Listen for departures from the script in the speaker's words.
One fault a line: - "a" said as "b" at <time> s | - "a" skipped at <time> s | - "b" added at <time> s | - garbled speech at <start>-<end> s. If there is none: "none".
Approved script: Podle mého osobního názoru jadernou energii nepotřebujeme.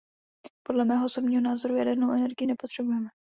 none